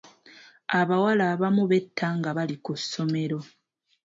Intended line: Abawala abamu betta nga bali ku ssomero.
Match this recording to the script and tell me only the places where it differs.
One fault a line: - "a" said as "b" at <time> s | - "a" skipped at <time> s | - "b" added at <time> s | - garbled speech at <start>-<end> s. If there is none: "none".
none